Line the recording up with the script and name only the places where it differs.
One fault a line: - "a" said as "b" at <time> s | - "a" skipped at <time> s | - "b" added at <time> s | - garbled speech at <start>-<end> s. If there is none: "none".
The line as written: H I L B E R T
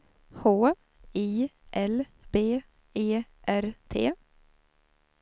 none